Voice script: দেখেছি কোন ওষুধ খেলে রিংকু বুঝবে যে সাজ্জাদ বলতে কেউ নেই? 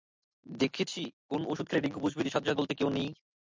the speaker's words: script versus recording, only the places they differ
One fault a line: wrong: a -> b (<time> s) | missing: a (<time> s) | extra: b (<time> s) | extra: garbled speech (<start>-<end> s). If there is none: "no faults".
no faults